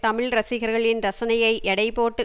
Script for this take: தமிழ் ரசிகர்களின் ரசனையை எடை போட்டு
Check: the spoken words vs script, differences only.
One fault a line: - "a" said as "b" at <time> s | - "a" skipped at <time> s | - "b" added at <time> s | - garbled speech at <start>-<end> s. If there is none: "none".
none